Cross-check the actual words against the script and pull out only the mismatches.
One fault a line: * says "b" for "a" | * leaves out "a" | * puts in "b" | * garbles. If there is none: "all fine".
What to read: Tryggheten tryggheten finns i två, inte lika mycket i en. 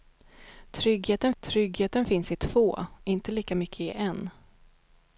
all fine